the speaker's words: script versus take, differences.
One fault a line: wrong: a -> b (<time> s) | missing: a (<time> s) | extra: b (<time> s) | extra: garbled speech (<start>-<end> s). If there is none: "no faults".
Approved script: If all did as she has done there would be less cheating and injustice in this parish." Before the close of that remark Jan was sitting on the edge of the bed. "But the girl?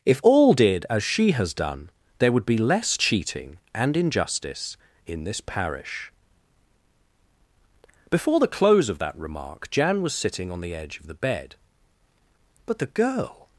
no faults